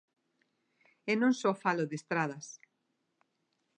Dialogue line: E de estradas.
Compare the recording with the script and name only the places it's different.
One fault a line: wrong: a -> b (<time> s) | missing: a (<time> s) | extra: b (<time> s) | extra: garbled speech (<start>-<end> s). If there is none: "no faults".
extra: non só falo (1.2 s)